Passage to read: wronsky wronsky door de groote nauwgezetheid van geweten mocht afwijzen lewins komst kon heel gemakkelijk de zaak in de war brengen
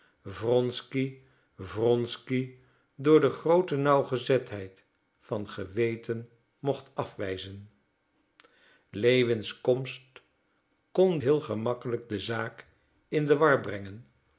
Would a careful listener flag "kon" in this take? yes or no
no